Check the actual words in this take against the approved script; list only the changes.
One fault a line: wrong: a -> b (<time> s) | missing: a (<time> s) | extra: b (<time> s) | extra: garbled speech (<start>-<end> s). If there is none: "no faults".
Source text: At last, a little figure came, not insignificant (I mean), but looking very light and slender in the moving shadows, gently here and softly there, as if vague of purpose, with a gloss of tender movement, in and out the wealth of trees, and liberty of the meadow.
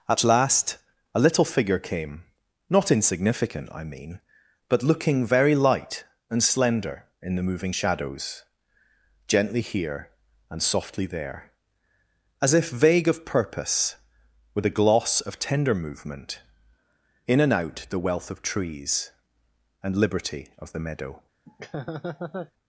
no faults